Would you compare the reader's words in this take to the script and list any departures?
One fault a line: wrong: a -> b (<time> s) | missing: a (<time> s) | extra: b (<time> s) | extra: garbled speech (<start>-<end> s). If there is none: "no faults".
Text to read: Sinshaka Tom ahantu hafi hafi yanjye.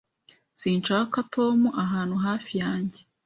missing: hafi (2.5 s)